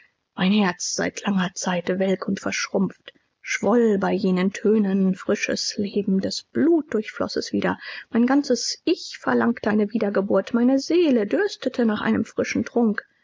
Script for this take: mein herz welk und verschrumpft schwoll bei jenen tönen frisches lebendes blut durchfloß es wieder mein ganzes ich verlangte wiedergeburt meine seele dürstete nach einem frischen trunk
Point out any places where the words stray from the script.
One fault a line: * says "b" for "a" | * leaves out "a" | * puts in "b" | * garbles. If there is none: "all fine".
* puts in "seit langer zeit"
* puts in "eine"